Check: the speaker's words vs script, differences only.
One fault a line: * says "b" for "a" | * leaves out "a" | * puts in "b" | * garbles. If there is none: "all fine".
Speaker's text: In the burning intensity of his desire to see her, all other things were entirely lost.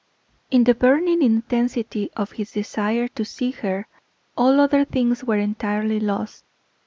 all fine